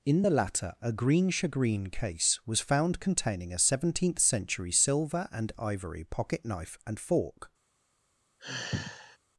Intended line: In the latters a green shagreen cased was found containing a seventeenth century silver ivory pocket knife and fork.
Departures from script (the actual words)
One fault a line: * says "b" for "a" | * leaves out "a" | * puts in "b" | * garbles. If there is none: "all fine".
* says "latter" for "latters"
* says "case" for "cased"
* puts in "and"